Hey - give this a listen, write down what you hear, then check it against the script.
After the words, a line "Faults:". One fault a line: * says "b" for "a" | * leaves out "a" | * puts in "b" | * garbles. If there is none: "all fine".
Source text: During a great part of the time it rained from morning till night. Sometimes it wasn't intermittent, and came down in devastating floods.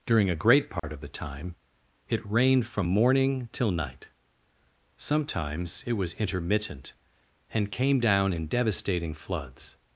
During a great part of the time it rained from morning till night. Sometimes it was intermittent, and came down in devastating floods.
Faults:
* says "was" for "wasn't"